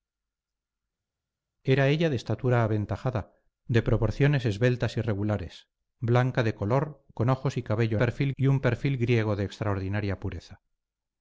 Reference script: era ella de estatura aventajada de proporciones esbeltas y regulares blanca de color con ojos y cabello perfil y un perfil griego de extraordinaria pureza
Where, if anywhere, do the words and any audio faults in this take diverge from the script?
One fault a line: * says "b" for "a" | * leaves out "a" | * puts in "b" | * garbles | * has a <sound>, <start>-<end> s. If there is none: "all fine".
all fine